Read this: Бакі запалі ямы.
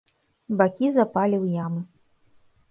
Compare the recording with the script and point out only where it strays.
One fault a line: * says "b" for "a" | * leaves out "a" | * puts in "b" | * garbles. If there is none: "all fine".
* puts in "ў"